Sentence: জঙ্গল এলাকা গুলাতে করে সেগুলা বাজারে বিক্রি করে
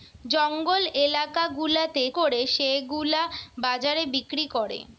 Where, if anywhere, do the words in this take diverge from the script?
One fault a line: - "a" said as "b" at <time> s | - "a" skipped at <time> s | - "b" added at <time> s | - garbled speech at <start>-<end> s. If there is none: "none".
none